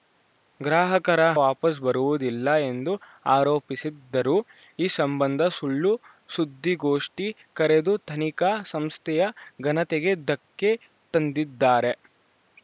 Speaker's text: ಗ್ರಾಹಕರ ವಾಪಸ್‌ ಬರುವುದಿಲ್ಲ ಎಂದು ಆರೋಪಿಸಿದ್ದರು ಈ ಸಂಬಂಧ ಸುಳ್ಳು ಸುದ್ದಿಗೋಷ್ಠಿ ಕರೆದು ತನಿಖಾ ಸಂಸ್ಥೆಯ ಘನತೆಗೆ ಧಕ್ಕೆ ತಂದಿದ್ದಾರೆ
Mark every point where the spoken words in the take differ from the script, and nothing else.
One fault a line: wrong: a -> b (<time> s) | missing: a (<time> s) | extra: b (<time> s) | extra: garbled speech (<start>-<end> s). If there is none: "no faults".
no faults